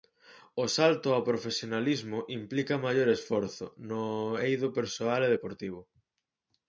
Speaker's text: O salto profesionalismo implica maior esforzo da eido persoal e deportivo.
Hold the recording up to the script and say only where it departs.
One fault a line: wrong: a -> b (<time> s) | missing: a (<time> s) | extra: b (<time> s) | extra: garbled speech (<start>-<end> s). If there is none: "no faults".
extra: ao (1.1 s)
wrong: da -> no (3.9 s)